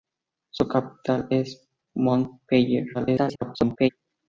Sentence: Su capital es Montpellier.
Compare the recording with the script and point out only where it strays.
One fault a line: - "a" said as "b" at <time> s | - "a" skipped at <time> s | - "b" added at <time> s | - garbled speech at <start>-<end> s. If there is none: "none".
- garbled speech at 2.9-3.9 s